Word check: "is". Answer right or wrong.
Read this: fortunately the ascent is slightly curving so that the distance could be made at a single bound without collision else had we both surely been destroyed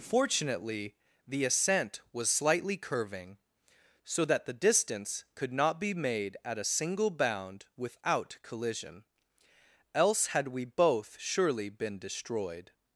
wrong